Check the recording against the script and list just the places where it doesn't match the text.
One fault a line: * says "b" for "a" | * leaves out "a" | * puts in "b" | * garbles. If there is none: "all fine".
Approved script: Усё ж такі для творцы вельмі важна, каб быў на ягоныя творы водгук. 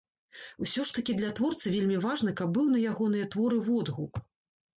all fine